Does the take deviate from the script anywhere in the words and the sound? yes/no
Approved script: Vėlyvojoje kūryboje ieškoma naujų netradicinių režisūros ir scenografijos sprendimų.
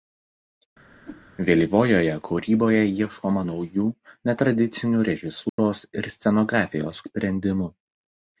yes